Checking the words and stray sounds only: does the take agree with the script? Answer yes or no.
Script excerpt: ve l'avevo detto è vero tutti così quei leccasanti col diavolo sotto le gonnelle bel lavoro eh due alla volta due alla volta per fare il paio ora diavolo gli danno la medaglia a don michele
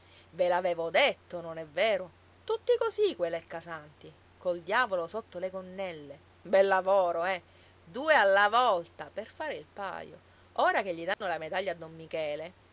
no